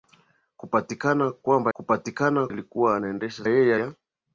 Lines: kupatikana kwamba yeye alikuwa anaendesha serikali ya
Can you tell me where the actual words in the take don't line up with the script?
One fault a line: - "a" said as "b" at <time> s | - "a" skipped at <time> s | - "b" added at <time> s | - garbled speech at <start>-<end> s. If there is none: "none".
- "yeye" said as "kupatikana" at 1.7 s
- "serikali" said as "yeye" at 3.5 s